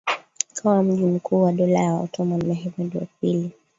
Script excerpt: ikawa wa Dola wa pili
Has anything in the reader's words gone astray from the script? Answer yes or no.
yes